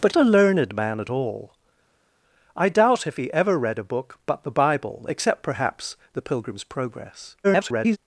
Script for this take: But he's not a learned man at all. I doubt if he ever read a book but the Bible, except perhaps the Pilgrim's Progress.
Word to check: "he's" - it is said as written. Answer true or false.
false